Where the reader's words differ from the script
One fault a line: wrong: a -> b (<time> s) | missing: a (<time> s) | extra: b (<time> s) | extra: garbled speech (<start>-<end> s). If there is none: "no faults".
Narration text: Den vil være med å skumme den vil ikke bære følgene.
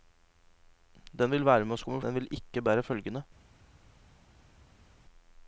no faults